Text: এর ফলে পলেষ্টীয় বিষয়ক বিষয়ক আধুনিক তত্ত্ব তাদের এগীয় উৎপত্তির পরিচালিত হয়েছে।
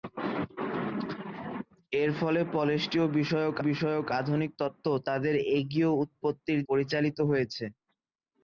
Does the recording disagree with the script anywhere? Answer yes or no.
no